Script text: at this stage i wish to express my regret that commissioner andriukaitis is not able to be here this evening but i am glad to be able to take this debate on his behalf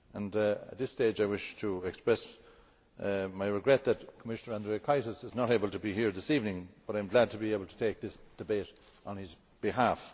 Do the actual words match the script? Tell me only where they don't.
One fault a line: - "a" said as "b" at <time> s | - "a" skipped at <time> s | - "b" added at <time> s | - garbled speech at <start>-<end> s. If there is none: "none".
none